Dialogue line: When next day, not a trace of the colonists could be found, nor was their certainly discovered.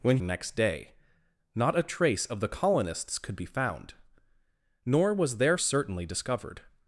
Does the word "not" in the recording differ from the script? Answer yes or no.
no